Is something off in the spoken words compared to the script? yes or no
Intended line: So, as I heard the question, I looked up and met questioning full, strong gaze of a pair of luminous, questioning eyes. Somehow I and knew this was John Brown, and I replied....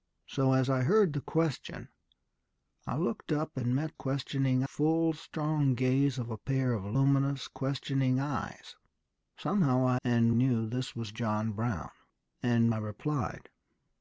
no